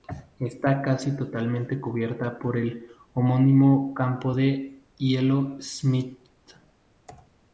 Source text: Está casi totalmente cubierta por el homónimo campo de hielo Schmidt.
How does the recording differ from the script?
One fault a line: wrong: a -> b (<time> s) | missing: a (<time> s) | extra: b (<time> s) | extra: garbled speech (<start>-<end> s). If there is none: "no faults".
no faults